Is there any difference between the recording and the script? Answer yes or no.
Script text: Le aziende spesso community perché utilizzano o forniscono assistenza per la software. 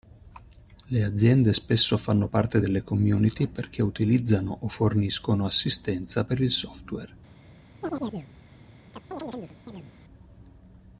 yes